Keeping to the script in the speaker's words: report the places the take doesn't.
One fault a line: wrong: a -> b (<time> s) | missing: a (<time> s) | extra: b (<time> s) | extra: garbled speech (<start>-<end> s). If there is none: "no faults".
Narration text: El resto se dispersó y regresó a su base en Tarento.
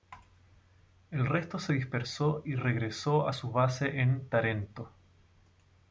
no faults